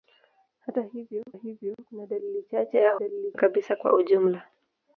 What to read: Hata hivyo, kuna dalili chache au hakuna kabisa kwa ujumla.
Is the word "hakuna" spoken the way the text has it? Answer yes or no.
no